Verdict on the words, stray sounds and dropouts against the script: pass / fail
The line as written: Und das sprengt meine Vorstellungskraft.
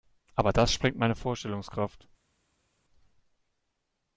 fail